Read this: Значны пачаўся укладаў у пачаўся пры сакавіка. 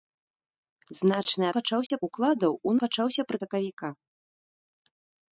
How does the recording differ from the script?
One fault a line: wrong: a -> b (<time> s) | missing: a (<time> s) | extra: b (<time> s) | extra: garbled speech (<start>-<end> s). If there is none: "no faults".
no faults